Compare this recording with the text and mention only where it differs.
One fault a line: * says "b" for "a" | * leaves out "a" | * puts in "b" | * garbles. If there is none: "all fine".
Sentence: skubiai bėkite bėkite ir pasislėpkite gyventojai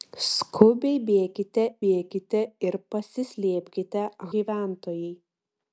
all fine